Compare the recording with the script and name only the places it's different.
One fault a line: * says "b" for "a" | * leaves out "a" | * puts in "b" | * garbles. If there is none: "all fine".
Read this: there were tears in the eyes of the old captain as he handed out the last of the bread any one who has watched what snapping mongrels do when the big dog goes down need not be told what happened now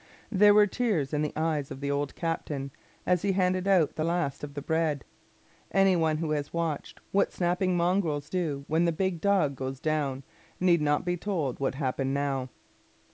all fine